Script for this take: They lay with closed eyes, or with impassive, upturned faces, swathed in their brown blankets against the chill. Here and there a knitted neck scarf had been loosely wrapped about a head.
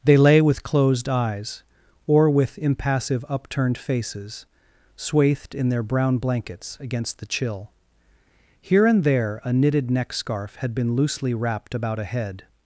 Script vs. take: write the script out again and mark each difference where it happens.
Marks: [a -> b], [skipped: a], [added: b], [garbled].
They lay with closed eyes, or with impassive, upturned faces, swathed in their brown blankets against the chill. Here and there a knitted neck scarf had been loosely wrapped about a head.